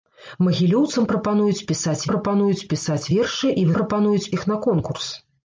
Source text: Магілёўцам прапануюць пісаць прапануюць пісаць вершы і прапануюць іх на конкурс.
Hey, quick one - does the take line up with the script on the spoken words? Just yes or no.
yes